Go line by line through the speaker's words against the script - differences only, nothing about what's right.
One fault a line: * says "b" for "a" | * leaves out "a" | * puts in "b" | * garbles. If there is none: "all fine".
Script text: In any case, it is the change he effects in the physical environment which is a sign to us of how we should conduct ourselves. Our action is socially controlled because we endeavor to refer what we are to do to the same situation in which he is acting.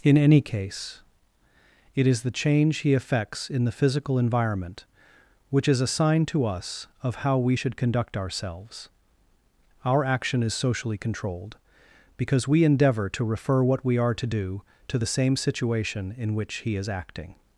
all fine